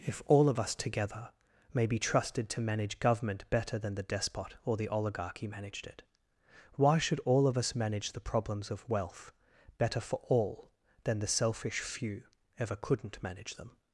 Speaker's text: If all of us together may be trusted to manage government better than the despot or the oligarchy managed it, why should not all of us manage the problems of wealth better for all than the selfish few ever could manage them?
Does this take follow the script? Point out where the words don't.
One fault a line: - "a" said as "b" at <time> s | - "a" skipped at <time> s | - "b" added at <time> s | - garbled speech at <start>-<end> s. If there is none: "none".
- "not" skipped at 7.2 s
- "could" said as "couldn't" at 12.8 s